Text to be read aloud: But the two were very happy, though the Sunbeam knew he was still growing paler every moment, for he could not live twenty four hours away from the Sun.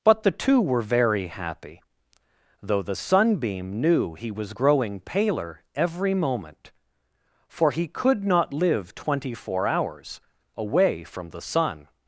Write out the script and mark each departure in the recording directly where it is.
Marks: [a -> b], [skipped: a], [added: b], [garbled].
But the two were very happy, though the Sunbeam knew he was [skipped: still] growing paler every moment, for he could not live twenty four hours away from the Sun.